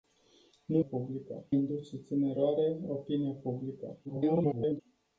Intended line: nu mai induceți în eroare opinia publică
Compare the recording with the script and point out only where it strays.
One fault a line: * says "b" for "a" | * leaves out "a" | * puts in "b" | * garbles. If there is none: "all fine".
* says "publică" for "mai"
* garbles